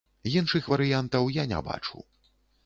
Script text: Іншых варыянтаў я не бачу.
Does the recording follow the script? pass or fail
pass